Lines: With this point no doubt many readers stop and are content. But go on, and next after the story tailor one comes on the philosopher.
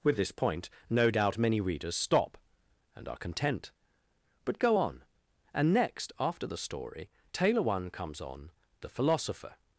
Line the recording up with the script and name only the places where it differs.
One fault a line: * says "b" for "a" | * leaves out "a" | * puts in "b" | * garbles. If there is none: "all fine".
all fine